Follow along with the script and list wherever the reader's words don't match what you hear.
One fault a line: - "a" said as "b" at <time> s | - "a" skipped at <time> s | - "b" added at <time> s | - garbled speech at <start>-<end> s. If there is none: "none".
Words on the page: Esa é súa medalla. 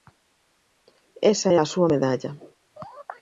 - "a" added at 1.6 s